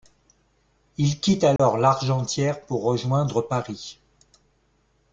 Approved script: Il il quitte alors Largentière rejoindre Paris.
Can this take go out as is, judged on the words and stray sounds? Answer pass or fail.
fail